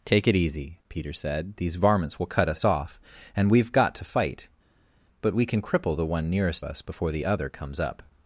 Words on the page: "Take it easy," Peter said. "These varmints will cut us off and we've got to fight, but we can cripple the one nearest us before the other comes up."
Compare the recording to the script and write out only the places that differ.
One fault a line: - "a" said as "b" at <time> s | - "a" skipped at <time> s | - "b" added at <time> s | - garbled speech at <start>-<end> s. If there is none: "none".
none